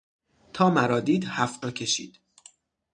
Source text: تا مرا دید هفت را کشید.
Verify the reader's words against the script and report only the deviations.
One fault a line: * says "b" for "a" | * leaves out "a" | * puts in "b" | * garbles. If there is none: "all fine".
all fine